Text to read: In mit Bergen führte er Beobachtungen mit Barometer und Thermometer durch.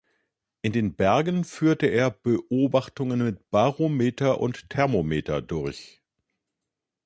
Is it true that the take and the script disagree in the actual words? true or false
true